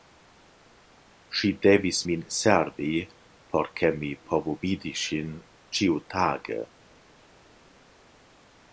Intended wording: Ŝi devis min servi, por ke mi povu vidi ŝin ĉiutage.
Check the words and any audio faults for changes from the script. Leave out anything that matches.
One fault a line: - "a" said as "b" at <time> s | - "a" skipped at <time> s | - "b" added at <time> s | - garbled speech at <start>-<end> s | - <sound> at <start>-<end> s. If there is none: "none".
none